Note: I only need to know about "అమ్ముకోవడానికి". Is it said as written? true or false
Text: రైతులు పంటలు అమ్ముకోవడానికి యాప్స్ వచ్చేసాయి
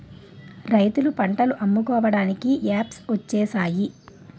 true